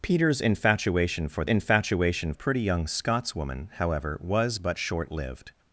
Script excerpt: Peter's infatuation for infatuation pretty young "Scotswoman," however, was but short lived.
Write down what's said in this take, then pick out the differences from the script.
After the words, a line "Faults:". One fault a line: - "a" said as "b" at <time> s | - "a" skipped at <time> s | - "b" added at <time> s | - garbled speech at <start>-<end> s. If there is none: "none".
Peter's infatuation for infatuation pretty young "Scotswoman," however, was but short lived.
Faults:
none